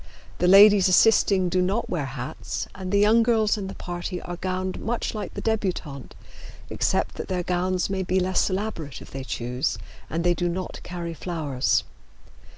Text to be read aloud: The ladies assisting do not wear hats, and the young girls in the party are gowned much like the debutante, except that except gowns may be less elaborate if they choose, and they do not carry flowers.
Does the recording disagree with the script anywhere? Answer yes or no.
yes